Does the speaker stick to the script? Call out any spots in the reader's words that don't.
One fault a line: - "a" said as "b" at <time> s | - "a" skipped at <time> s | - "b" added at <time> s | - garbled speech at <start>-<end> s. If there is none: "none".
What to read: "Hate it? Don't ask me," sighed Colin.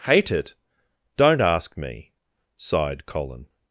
none